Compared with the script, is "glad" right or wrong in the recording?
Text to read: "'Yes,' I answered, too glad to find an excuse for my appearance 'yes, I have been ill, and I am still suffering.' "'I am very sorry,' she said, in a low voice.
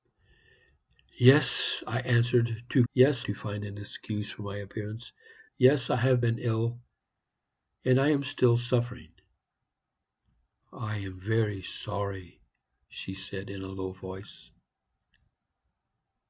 wrong